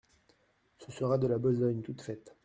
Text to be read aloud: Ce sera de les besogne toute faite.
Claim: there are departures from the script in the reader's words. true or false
true